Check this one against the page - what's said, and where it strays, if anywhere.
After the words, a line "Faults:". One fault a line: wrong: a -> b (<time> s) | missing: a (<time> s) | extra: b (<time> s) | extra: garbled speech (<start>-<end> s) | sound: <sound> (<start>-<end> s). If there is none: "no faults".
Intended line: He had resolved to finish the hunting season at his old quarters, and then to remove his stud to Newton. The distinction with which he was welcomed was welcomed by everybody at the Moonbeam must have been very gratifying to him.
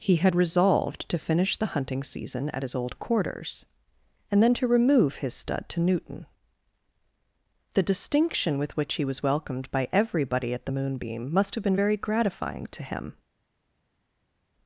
He had resolved to finish the hunting season at his old quarters, and then to remove his stud to Newton. The distinction with which he was welcomed by everybody at the Moonbeam must have been very gratifying to him.
Faults:
missing: was welcomed (9.7 s)